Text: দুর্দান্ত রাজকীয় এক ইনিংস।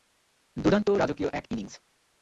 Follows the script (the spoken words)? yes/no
yes